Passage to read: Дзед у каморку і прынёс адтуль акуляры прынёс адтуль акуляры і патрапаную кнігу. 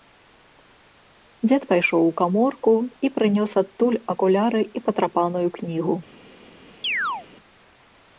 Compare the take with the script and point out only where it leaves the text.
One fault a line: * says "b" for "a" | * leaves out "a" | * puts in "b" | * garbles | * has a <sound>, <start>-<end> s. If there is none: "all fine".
* puts in "пайшоў"
* leaves out "прынёс адтуль акуляры"
* has a chirp, 6.8-7.3 s